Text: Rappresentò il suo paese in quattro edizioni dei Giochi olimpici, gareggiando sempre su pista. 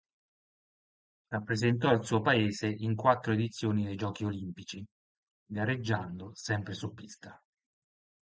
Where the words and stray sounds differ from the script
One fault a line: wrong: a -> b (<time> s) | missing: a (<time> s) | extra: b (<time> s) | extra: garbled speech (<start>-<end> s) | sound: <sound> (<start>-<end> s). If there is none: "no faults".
no faults